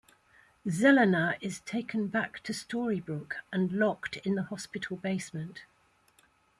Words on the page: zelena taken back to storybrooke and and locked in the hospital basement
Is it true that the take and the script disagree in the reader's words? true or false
true